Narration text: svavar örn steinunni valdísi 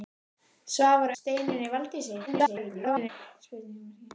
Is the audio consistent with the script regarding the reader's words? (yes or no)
no